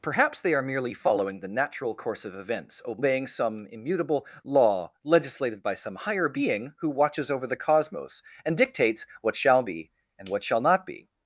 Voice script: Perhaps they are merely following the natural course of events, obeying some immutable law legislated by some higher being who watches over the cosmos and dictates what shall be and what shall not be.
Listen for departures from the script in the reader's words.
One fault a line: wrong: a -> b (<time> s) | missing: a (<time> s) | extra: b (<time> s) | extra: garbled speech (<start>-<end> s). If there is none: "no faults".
no faults